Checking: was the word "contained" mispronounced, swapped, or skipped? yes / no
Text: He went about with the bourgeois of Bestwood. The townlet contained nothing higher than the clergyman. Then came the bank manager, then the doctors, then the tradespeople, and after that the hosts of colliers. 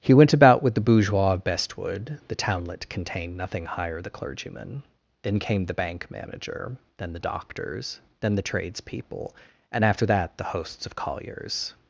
no